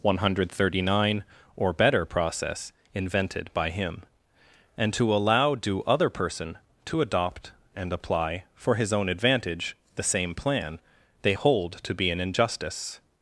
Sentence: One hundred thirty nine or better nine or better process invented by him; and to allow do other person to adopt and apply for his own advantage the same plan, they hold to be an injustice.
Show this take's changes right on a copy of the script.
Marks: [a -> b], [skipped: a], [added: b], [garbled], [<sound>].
One hundred thirty nine or better [skipped: nine or better] process invented by him; and to allow do other person to adopt and apply for his own advantage the same plan, they hold to be an injustice.